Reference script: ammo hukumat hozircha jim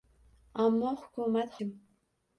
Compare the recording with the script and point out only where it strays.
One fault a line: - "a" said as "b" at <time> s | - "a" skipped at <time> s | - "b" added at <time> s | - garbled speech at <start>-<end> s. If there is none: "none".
- "hozircha" skipped at 1.6 s